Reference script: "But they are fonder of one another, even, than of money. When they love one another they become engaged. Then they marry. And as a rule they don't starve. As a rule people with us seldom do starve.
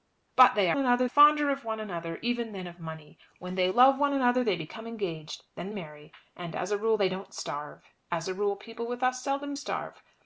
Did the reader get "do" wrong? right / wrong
wrong